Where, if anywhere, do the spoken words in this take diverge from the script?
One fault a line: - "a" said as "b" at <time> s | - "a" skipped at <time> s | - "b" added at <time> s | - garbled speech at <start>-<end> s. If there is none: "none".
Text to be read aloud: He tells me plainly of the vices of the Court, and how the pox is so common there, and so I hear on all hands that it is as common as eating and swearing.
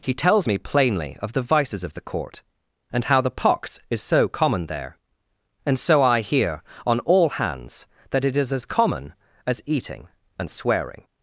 none